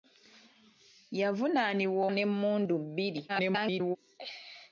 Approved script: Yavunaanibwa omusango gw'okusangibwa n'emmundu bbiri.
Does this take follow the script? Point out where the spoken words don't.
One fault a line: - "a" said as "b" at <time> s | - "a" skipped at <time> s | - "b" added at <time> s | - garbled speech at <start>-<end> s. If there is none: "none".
- "omusango gw'okusangibwa" skipped at 2.0 s
- garbled speech at 3.3-4.0 s